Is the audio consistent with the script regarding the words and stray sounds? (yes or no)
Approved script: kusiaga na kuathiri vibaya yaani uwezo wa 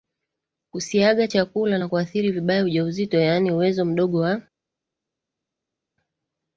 no